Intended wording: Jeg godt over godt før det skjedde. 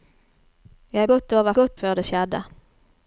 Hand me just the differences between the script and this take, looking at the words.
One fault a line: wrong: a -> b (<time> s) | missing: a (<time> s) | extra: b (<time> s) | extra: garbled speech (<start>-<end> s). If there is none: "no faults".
no faults